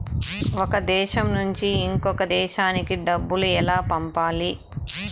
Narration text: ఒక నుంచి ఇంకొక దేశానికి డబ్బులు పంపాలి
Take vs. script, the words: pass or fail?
fail